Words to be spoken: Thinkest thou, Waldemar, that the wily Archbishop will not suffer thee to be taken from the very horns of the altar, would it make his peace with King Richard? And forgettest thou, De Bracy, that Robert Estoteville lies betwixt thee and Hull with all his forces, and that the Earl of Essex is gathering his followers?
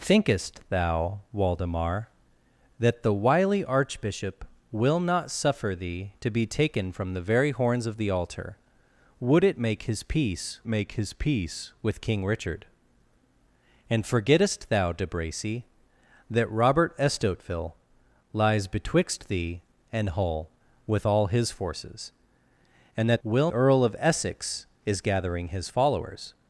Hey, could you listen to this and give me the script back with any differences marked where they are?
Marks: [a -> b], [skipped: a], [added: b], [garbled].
Thinkest thou, Waldemar, that the wily Archbishop will not suffer thee to be taken from the very horns of the altar, would it make his peace [added: make his peace] with King Richard? And forgettest thou, De Bracy, that Robert Estoteville lies betwixt thee and Hull with all his forces, and that [the -> will] Earl of Essex is gathering his followers?